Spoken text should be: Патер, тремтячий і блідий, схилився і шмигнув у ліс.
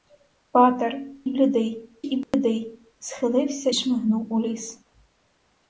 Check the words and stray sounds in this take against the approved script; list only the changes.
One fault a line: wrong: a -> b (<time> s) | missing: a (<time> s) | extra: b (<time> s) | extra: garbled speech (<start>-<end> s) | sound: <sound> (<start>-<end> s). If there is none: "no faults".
wrong: тремтячий -> блідий (1.3 s)
sound: dropout (2.2-2.3 s)
missing: і (3.7 s)